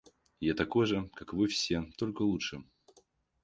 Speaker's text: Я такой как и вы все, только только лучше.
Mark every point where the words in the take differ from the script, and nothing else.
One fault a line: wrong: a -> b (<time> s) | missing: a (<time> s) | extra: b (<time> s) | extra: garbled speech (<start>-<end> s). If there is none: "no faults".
extra: же (0.8 s)
missing: только (2.2 s)